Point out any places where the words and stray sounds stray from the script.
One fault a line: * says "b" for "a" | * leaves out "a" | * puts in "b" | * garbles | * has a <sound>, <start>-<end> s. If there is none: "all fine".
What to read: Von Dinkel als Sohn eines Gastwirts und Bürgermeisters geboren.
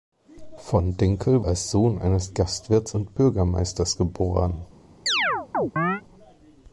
* has a chirp, 5.1-6.0 s